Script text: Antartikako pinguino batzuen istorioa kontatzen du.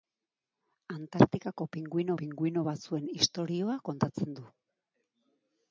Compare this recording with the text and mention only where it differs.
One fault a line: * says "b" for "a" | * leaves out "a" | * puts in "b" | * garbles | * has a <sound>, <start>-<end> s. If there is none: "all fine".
* puts in "pinguino"